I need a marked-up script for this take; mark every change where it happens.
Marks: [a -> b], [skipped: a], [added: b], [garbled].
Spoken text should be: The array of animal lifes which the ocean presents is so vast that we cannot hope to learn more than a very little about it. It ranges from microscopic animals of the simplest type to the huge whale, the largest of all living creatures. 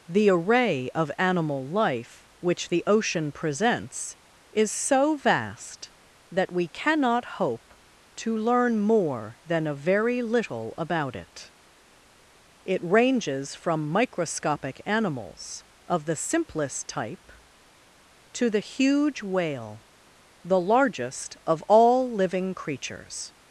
The array of animal [lifes -> life] which the ocean presents is so vast that we cannot hope to learn more than a very little about it. It ranges from microscopic animals of the simplest type to the huge whale, the largest of all living creatures.